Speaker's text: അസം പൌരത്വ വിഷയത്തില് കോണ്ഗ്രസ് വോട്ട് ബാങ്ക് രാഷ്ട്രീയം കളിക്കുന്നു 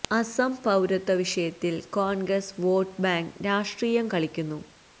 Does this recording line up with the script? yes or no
yes